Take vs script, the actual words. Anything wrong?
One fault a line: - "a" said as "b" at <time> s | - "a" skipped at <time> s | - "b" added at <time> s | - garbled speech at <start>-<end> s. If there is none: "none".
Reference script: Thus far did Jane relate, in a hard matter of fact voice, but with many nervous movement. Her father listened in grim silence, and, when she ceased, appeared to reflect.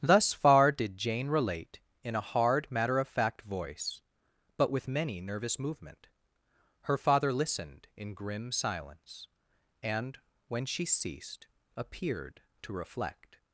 none